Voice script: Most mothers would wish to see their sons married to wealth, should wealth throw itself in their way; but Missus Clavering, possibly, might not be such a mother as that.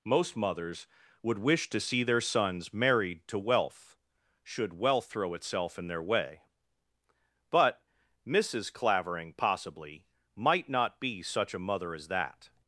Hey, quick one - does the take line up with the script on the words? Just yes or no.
yes